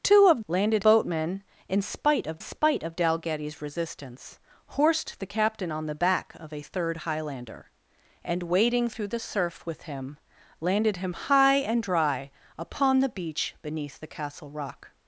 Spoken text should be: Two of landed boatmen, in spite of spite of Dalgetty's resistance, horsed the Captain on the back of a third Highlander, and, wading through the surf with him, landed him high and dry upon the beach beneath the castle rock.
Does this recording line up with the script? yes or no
yes